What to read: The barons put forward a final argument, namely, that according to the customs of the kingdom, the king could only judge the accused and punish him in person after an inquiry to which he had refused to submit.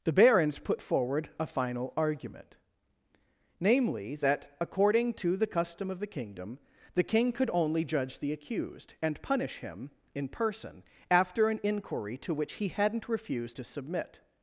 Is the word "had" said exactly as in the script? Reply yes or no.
no